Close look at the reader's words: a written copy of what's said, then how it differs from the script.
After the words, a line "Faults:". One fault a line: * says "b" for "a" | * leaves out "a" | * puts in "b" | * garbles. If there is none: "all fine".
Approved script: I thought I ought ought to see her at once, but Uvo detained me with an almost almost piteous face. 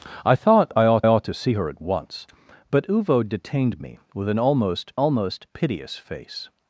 I thought I ought ought to see her at once, but Uvo detained me with an almost almost piteous face.
Faults:
all fine